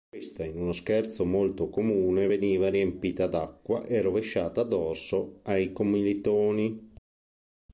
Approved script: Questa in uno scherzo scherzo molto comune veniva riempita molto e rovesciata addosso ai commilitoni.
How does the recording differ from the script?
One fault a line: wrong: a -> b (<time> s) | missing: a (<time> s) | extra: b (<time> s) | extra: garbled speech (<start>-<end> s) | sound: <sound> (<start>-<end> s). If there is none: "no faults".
missing: scherzo (1.2 s)
wrong: molto -> d'acqua (3.3 s)